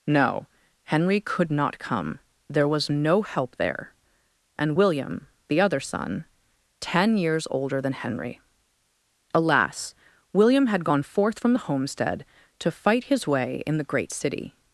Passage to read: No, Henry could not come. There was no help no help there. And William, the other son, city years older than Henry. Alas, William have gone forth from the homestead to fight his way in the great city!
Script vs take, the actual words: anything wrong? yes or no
yes